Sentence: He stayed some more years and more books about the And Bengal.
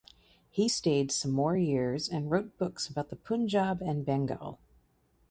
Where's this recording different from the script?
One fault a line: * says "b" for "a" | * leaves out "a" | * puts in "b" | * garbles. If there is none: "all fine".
* says "wrote" for "more"
* puts in "Punjab"